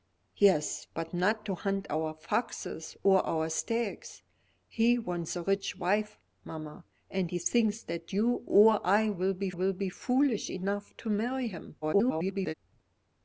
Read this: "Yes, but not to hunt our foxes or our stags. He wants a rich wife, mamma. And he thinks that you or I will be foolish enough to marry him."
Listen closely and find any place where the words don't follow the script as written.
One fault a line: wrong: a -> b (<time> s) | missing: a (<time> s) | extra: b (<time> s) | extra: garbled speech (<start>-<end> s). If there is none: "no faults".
extra: will be (9.5 s)
extra: garbled speech (11.8-12.5 s)